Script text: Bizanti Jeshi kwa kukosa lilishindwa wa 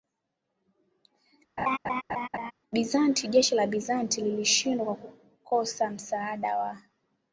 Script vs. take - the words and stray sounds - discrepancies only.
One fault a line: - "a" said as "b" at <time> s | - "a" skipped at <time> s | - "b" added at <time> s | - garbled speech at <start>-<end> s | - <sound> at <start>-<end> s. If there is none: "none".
- laugh at 1.6-2.5 s
- "la Bizanti lilishindwa" added at 3.5 s
- "lilishindwa" said as "msaada" at 5.9 s